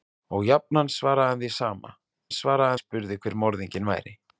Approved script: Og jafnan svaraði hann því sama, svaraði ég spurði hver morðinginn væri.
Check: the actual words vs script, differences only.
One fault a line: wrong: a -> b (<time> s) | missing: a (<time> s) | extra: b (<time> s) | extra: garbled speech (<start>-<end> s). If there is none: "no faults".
no faults